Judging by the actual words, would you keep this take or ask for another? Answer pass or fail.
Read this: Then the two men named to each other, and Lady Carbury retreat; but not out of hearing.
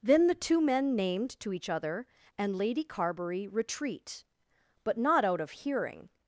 pass